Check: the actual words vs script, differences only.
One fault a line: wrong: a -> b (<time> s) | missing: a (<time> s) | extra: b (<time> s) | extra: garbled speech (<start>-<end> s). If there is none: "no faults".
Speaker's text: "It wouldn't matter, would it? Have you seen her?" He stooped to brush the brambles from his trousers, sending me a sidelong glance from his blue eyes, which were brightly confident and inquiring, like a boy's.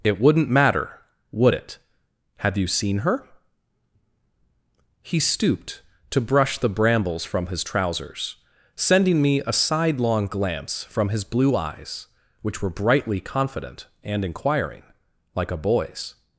no faults